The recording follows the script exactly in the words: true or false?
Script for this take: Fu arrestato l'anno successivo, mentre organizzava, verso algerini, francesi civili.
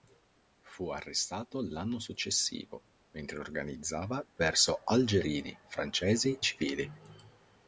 true